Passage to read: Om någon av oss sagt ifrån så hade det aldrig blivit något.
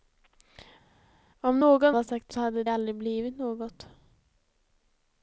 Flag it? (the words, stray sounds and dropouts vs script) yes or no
yes